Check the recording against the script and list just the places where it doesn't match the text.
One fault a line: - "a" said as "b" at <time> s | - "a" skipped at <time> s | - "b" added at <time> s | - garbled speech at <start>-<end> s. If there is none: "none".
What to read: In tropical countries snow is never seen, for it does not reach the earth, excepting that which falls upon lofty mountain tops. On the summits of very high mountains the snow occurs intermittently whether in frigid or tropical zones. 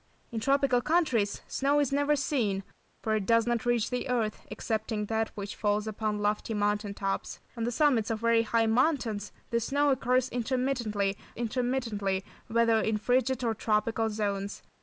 - "intermittently" added at 11.3 s